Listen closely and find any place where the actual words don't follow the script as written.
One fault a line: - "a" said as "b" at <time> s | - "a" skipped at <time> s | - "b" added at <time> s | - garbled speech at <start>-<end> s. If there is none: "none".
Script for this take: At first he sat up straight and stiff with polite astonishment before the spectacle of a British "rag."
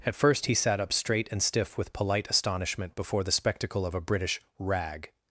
none